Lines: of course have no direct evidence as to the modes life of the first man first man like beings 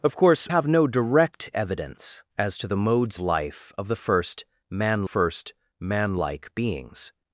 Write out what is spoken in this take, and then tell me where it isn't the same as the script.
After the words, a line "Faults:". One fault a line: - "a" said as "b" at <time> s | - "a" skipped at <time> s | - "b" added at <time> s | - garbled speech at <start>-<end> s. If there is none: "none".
of course have no direct evidence as to the modes life of the first man first man like beings
Faults:
none